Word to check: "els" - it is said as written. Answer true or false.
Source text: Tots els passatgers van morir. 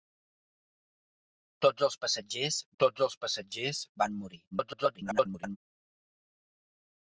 true